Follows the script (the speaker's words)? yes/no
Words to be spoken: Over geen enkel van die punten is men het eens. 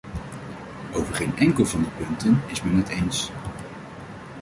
yes